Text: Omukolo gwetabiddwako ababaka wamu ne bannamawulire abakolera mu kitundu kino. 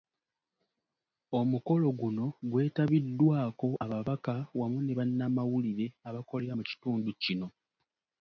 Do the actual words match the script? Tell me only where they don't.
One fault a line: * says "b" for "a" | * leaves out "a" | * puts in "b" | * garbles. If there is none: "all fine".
* puts in "guno"